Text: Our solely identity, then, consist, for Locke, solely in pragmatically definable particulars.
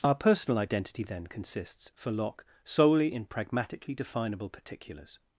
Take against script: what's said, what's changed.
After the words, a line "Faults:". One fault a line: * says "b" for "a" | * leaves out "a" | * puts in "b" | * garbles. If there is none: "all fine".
Our personal identity, then, consists, for Locke, solely in pragmatically definable particulars.
Faults:
* says "personal" for "solely"
* says "consists" for "consist"